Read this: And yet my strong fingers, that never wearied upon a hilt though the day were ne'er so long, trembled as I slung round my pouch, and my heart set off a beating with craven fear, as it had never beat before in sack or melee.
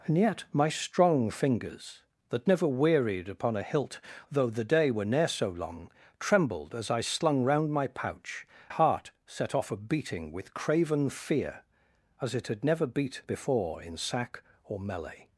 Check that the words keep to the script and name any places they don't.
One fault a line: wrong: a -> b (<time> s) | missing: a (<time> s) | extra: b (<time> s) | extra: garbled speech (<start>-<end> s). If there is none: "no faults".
missing: and my (8.5 s)